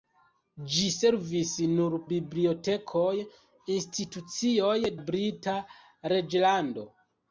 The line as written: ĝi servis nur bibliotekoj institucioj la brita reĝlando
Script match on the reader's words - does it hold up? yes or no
yes